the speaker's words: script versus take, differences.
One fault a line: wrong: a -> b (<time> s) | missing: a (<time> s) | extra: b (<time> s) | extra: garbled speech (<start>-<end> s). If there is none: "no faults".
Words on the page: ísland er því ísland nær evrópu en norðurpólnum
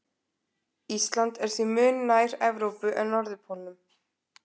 wrong: ísland -> mun (1.8 s)